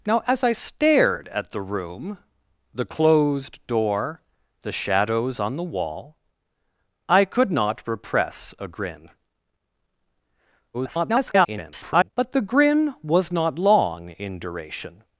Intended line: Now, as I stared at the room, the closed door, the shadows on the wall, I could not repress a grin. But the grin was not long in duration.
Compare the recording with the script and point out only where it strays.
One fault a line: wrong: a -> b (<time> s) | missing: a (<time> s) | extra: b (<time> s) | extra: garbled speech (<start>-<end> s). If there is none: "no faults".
extra: garbled speech (10.7-12.1 s)